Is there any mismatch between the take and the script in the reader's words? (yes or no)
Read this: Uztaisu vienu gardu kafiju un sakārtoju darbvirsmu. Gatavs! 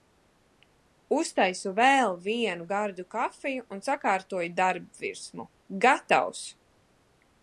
yes